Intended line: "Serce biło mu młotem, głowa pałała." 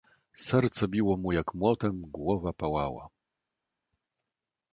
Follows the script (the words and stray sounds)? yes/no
no